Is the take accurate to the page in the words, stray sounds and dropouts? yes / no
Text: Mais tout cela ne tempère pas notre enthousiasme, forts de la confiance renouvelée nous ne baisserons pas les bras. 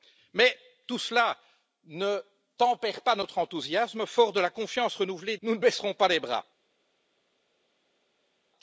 yes